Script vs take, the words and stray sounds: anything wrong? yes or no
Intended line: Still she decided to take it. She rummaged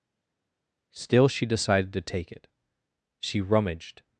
no